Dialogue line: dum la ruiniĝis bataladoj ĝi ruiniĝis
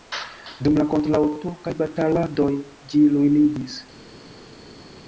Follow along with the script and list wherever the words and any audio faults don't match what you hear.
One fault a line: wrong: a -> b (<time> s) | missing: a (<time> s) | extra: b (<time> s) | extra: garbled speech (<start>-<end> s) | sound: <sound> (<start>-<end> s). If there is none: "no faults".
wrong: ruiniĝis -> kontraŭturkaj (0.9 s)